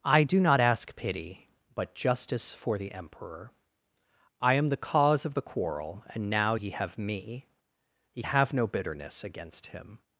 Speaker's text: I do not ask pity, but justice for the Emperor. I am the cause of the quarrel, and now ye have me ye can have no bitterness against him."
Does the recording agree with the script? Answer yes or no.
no